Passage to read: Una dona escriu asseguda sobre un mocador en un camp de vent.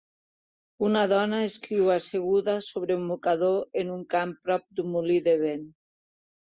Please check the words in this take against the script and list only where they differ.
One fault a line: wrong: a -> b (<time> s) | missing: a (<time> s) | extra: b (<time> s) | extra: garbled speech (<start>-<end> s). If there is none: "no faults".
extra: prop d'un molí (4.5 s)